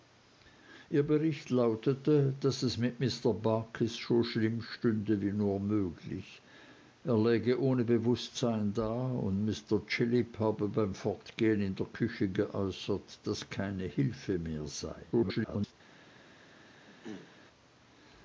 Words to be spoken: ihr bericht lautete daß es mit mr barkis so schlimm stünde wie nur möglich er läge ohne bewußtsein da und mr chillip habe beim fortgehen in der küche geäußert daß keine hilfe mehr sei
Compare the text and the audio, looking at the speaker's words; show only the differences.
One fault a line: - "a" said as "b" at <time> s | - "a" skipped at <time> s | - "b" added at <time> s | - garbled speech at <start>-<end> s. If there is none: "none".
- garbled speech at 15.1-15.7 s